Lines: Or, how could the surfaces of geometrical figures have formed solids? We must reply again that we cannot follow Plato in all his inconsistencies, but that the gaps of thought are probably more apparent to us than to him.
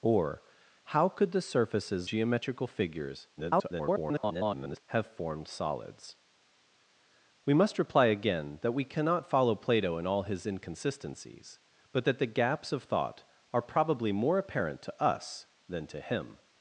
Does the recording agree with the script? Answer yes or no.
no